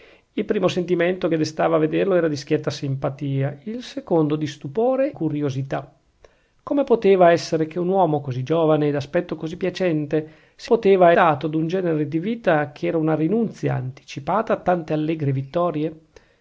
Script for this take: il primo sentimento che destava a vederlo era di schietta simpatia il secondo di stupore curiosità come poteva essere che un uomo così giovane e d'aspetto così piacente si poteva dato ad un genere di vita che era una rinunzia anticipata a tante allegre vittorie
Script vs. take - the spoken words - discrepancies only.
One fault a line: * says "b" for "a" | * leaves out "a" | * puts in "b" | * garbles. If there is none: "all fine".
all fine